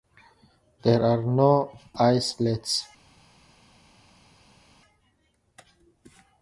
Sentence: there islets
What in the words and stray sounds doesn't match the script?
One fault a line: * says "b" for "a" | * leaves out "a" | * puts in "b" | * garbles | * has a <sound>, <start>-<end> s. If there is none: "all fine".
* puts in "are no"